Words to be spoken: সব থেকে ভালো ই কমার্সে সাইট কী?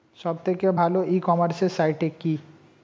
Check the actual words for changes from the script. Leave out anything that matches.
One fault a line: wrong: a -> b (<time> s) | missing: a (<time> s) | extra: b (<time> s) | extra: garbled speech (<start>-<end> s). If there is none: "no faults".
no faults